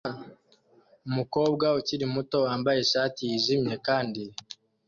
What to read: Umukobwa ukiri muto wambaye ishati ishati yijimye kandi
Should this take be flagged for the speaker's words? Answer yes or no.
yes